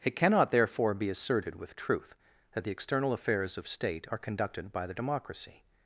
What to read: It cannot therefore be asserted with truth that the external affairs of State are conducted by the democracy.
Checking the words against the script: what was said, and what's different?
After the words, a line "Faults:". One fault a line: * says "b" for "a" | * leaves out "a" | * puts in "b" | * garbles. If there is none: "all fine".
It cannot therefore be asserted with truth that the external affairs of State are conducted by the democracy.
Faults:
all fine